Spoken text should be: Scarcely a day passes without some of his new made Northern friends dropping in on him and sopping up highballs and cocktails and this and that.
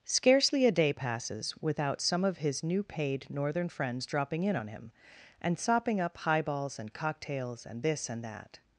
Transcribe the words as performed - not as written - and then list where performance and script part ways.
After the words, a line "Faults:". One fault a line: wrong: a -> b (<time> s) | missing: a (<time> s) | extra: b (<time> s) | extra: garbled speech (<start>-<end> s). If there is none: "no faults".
Scarcely a day passes without some of his new paid Northern friends dropping in on him and sopping up highballs and cocktails and this and that.
Faults:
wrong: made -> paid (2.8 s)